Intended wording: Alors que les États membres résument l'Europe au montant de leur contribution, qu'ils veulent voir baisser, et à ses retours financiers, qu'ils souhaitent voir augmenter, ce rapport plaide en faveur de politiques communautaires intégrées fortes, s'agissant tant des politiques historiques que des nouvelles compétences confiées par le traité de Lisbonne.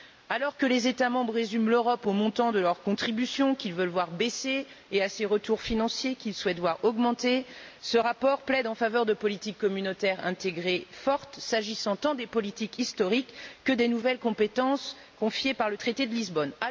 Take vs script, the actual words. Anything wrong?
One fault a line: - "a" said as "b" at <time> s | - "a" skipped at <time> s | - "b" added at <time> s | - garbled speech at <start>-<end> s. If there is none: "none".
none